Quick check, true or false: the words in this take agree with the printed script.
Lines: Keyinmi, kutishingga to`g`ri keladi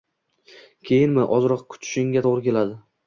false